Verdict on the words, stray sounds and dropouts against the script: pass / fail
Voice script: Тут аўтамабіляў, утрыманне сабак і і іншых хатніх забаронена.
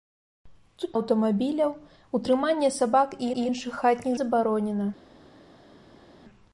pass